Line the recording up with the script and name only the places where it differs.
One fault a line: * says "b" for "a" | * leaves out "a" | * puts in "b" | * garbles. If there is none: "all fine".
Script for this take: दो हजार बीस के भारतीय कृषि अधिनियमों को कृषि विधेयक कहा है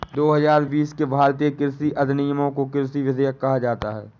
* puts in "जाता"